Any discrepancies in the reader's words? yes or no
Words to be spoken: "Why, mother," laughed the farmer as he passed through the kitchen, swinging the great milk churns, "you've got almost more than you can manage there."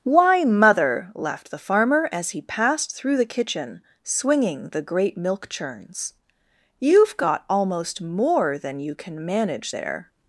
no